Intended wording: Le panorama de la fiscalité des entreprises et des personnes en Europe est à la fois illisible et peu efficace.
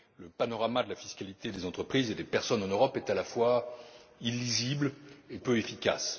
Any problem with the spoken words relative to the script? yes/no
no